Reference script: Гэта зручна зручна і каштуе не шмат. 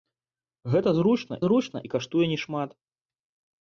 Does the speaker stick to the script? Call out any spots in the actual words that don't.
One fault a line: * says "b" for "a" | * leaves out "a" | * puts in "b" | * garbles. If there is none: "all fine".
all fine